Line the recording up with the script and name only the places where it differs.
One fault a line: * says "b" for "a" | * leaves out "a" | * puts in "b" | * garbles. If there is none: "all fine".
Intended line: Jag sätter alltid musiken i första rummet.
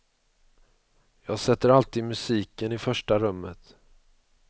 all fine